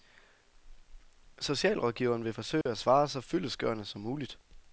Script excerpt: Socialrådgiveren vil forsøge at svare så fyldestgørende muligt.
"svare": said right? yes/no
yes